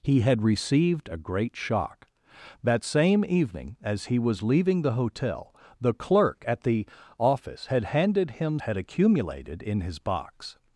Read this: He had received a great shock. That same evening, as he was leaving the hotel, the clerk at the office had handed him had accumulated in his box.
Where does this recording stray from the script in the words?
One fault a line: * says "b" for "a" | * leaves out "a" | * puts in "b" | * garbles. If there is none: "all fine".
all fine